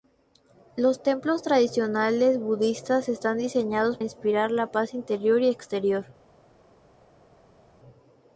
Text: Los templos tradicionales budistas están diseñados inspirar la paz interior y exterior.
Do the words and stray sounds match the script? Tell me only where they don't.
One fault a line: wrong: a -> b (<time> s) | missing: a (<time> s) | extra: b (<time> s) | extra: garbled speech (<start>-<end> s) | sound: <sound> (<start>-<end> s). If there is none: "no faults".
no faults